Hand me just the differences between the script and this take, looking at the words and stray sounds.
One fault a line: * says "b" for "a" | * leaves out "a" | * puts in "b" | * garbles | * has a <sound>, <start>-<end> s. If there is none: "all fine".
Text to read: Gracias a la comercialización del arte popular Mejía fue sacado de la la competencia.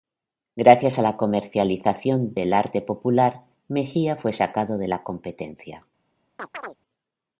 * leaves out "la"
* has a chirp, 6.4-6.8 s